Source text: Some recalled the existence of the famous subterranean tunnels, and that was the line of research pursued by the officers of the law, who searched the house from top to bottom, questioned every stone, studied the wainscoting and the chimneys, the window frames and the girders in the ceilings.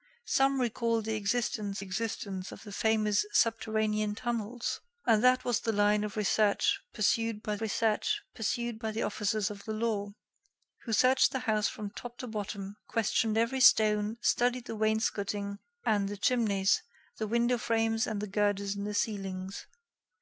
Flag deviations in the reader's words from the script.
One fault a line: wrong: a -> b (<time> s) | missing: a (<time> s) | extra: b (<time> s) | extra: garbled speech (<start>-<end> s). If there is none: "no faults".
extra: existence (1.8 s)
extra: research pursued by (7.6 s)